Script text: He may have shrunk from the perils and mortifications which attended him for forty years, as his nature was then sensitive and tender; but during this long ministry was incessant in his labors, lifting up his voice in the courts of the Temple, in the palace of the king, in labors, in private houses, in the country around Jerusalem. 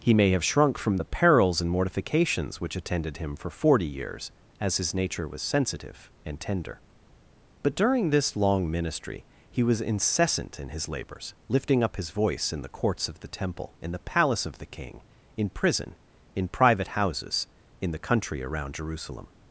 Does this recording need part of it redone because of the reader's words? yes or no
yes